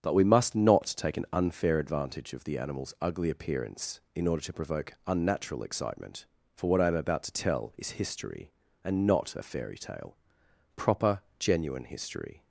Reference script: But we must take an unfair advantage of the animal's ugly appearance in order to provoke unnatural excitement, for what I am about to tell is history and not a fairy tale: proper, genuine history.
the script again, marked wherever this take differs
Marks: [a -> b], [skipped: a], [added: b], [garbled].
But we must [added: not] take an unfair advantage of the animal's ugly appearance in order to provoke unnatural excitement, for what I am about to tell is history and not a fairy tale: proper, genuine history.